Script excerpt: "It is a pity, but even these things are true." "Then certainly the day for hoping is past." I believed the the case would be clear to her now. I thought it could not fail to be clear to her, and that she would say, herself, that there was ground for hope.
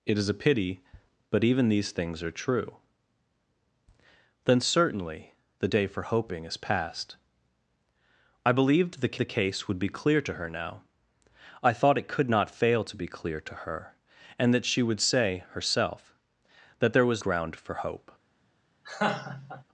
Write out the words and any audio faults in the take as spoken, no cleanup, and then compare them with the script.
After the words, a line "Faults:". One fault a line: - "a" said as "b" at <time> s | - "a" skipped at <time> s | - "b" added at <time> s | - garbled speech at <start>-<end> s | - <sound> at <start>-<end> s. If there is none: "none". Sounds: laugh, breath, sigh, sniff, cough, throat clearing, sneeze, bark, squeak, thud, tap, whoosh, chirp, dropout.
"It is a pity, but even these things are true." "Then certainly the day for hoping is past." I believed the the case would be clear to her now. I thought it could not fail to be clear to her, and that she would say, herself, that there was ground for hope.
Faults:
- laugh at 18.8-19.6 s